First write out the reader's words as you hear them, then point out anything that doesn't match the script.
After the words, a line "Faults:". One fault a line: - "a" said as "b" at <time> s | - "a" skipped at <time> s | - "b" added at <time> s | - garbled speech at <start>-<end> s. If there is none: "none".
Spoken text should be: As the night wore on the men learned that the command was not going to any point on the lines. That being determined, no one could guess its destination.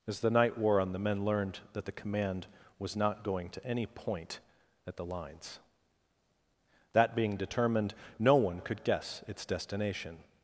As the night wore on the men learned that the command was not going to any point at the lines. That being determined, no one could guess its destination.
Faults:
- "on" said as "at" at 4.9 s